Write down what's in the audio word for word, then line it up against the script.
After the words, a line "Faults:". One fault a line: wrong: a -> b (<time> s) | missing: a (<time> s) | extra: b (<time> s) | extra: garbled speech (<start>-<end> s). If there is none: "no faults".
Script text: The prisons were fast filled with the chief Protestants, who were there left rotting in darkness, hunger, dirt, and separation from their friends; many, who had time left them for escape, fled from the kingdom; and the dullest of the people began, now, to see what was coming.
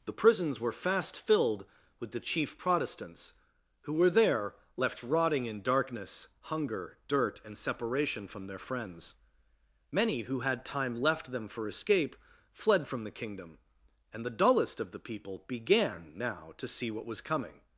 The prisons were fast filled with the chief Protestants, who were there left rotting in darkness, hunger, dirt, and separation from their friends; many, who had time left them for escape, fled from the kingdom; and the dullest of the people began, now, to see what was coming.
Faults:
no faults